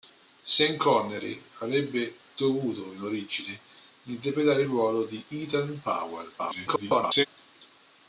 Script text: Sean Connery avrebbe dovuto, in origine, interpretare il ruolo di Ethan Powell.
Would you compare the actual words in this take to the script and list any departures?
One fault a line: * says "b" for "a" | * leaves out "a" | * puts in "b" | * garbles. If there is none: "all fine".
* garbles